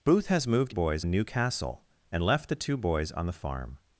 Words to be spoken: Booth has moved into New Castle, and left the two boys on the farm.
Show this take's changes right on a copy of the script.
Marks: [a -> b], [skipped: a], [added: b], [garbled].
Booth has moved [into -> boys] New Castle, and left the two boys on the farm.